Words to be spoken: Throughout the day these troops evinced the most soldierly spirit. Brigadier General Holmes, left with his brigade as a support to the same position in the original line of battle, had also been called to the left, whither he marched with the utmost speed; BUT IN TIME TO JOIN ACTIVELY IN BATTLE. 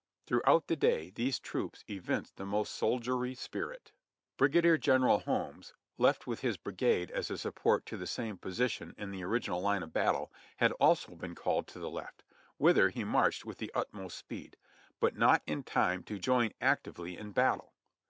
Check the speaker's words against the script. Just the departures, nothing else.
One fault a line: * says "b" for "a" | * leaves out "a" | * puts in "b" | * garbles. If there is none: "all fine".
* puts in "NOT"